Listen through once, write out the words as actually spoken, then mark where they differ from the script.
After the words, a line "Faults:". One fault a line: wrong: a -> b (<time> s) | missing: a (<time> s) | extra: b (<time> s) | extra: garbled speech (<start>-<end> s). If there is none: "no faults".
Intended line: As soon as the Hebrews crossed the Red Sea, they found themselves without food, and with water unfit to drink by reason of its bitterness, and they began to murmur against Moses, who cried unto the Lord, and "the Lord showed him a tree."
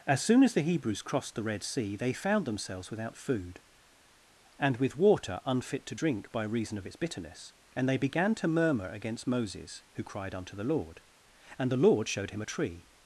As soon as the Hebrews crossed the Red Sea, they found themselves without food, and with water unfit to drink by reason of its bitterness, and they began to murmur against Moses, who cried unto the Lord, and "the Lord showed him a tree."
Faults:
no faults